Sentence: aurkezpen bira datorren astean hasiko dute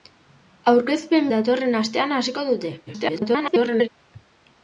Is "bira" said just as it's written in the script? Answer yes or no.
no